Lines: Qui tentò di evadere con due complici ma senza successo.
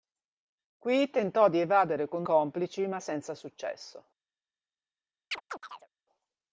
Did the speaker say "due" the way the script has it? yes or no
no